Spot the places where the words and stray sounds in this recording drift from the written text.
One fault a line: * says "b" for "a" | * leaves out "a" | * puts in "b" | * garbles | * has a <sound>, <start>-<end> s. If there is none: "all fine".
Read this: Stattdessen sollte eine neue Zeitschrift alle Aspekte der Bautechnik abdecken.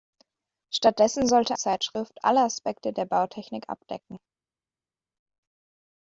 * leaves out "eine neue"